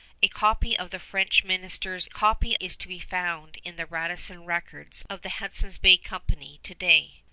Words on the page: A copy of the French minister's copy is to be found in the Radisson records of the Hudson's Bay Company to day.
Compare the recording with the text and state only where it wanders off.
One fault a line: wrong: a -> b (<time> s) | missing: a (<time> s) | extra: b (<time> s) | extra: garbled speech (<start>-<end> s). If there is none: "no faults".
no faults